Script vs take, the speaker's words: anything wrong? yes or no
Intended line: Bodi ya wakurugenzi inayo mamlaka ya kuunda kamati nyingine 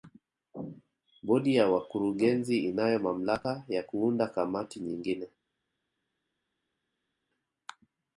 no